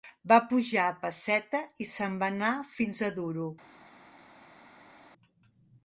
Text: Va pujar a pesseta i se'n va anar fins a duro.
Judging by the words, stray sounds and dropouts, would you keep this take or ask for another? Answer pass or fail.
pass